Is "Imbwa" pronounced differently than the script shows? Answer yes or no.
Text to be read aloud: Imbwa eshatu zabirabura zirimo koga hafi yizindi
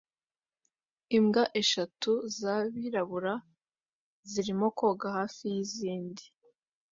no